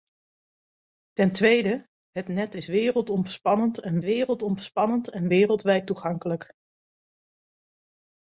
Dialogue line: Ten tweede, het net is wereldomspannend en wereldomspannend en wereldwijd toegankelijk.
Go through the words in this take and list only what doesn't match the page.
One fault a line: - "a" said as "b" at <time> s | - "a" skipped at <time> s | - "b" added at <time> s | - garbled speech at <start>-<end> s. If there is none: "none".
none